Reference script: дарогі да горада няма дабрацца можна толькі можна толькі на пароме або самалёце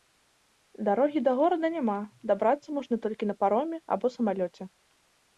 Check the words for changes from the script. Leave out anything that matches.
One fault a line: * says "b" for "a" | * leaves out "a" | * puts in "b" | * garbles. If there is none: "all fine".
* leaves out "можна толькі"